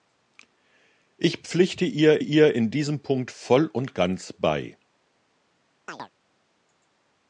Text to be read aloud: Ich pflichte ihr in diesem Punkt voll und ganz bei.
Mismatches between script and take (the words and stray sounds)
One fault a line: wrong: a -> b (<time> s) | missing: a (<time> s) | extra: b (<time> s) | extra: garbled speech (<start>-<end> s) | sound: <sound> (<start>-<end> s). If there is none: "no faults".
extra: ihr (2.2 s)
sound: chirp (5.9-6.1 s)